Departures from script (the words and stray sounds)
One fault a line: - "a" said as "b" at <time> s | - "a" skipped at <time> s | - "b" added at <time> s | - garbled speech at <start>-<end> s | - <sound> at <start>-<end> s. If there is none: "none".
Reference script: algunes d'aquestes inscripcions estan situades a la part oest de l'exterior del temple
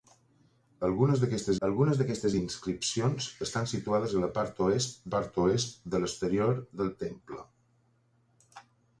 - "algunes d'aquestes" added at 1.6 s
- "part oest" added at 5.1 s